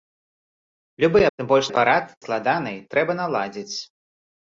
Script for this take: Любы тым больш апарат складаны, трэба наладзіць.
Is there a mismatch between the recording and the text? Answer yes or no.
no